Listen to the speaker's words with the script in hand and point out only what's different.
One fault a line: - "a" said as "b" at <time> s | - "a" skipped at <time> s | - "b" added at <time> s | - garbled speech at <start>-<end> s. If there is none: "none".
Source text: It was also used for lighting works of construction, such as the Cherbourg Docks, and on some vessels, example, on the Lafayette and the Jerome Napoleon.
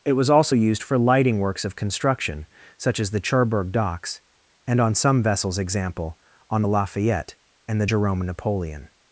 none